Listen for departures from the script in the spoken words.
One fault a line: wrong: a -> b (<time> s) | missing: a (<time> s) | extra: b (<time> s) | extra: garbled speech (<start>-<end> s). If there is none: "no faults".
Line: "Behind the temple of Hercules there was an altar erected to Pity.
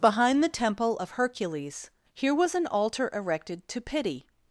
wrong: there -> here (2.1 s)